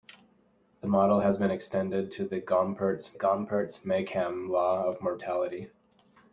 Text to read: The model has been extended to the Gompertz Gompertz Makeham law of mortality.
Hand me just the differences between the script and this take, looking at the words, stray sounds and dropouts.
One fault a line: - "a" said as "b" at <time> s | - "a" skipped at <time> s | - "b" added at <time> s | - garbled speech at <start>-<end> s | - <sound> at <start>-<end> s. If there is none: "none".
none